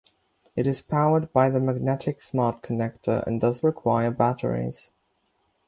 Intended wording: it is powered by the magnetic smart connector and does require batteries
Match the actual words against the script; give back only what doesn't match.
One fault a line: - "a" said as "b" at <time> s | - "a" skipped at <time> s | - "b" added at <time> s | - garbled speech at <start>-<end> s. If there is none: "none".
none